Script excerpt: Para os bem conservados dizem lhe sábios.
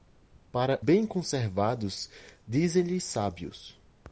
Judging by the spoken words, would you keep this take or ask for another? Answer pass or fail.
fail